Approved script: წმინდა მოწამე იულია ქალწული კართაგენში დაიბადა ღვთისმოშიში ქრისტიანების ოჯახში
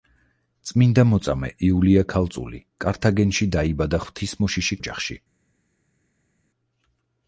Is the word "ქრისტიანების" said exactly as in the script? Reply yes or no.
no